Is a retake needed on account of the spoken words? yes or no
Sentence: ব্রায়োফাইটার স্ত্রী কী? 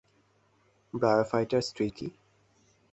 no